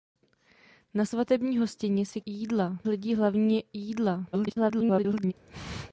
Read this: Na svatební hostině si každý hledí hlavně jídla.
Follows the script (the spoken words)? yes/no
no